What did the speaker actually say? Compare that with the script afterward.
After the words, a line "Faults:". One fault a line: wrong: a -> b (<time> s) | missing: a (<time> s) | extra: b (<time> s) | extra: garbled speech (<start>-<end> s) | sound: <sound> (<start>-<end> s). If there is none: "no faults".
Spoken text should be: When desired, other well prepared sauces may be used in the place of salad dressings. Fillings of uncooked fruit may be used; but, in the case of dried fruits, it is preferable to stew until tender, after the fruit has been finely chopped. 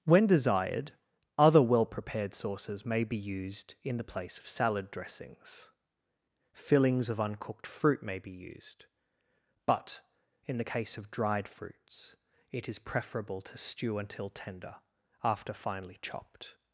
When desired, other well prepared sauces may be used in the place of salad dressings. Fillings of uncooked fruit may be used; but, in the case of dried fruits, it is preferable to stew until tender, after finely chopped.
Faults:
missing: the fruit has been (15.5 s)